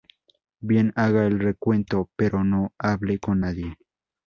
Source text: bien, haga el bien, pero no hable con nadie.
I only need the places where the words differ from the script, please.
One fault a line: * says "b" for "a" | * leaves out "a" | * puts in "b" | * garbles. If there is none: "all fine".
* says "recuento" for "bien"